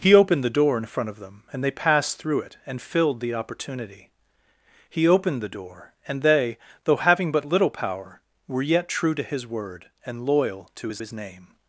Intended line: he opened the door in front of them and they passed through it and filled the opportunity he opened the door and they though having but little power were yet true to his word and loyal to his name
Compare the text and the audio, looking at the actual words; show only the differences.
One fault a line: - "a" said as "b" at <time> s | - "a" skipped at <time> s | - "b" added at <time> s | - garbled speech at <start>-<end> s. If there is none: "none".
- "his" added at 11.0 s